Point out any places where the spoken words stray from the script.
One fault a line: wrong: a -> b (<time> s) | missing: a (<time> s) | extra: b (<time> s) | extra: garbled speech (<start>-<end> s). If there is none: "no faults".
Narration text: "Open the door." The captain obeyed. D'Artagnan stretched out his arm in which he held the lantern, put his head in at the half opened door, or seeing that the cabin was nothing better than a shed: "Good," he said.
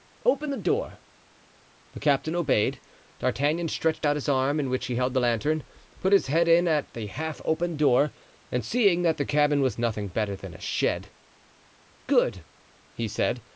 wrong: or -> and (8.5 s)